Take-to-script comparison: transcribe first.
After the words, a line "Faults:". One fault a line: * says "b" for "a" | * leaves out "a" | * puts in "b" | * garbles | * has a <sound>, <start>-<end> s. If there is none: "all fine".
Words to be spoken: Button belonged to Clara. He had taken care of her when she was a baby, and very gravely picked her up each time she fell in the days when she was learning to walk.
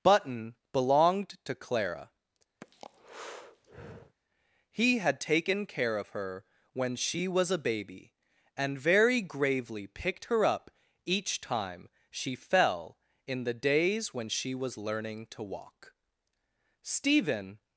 Button belonged to Clara. He had taken care of her when she was a baby, and very gravely picked her up each time she fell in the days when she was learning to walk. Stephen
Faults:
* has a breath, 2.6-4.2 s
* puts in "Stephen"